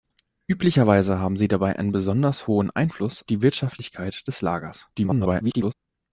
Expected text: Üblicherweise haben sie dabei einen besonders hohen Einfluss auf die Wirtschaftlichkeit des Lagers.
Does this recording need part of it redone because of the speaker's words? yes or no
yes